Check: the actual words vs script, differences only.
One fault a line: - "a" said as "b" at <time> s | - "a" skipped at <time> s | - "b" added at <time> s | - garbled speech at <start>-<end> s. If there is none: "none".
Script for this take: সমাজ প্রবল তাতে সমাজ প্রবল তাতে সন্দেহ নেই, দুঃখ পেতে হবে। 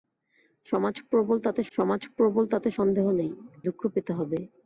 none